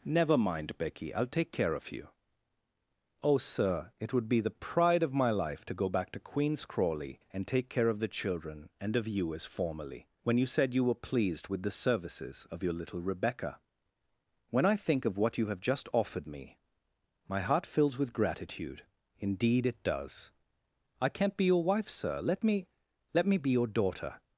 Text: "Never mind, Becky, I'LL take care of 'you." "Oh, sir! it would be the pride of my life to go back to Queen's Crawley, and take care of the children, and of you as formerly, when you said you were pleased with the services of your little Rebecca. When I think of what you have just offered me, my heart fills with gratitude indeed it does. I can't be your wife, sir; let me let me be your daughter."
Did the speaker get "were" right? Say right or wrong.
right